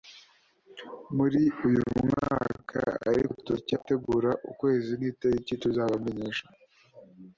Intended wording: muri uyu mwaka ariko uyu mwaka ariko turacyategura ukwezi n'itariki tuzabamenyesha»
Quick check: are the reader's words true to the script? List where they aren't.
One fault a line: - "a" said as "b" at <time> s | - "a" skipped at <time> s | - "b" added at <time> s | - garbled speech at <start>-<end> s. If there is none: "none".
- "uyu mwaka ariko" skipped at 3.3 s